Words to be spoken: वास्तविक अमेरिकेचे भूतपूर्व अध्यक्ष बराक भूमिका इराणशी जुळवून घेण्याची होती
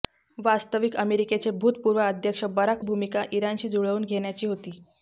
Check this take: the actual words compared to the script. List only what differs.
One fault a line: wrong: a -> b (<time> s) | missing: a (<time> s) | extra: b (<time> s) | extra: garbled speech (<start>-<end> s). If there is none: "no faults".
no faults